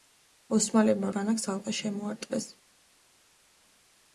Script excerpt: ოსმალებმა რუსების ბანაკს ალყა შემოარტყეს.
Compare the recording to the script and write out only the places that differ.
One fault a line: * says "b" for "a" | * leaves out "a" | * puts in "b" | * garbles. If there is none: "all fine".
* leaves out "რუსების"